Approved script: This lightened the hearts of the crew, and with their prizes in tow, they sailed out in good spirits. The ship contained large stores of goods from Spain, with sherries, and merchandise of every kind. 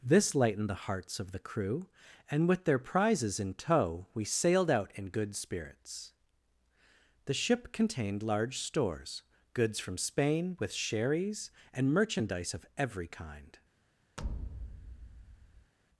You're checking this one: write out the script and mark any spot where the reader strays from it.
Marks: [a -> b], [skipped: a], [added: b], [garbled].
This lightened the hearts of the crew, and with their prizes in tow, [they -> we] sailed out in good spirits. The ship contained large stores [skipped: of] goods from Spain, with sherries, and merchandise of every kind.